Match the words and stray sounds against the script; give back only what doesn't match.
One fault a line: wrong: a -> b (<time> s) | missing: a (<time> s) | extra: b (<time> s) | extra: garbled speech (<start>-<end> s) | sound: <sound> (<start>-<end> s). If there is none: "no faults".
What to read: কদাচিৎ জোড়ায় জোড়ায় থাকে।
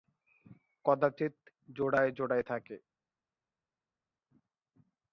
no faults